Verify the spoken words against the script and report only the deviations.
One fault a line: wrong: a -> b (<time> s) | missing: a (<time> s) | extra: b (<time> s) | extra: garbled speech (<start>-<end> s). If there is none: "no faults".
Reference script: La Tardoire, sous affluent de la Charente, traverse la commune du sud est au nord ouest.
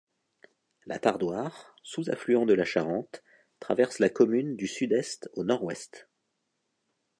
no faults